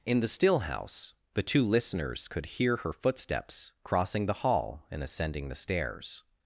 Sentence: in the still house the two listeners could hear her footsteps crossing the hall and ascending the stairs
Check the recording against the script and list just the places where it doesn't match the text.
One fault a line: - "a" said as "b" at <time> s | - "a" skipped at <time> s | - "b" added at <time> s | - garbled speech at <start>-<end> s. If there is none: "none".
none